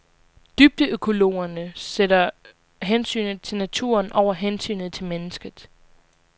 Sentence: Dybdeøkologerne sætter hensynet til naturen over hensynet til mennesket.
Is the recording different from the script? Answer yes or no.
no